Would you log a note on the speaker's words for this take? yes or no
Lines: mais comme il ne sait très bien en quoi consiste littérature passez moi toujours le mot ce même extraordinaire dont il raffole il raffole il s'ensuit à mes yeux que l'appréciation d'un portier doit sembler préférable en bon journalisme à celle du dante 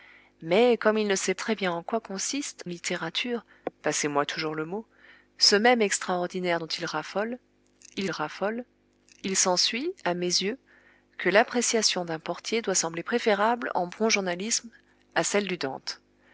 no